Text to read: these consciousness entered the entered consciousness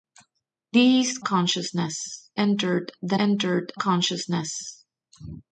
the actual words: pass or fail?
pass